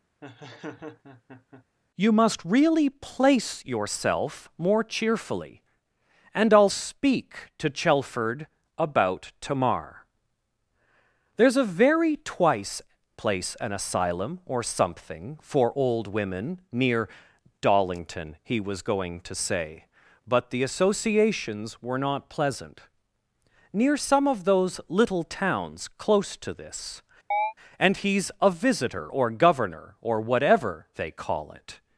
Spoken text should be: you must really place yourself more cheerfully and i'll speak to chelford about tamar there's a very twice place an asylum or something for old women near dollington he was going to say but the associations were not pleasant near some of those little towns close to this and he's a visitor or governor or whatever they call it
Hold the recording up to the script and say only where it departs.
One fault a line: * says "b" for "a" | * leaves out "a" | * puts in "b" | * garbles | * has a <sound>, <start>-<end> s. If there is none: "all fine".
* has a laugh, 0.2-1.6 s
* has a chirp, 27.3-27.5 s